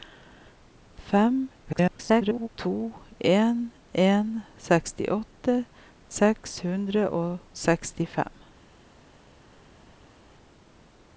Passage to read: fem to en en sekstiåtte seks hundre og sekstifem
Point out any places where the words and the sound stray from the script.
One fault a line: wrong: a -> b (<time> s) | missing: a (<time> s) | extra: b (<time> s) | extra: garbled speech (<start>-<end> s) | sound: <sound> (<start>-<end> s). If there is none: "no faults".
extra: garbled speech (1.6-2.5 s)